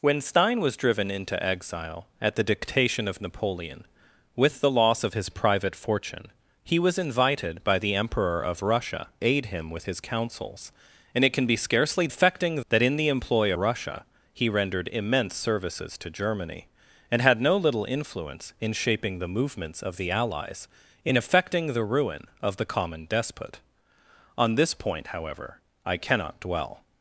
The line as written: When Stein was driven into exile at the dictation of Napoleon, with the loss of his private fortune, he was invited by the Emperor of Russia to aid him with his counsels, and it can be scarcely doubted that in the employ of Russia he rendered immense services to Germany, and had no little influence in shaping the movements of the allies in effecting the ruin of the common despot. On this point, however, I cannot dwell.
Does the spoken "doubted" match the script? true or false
false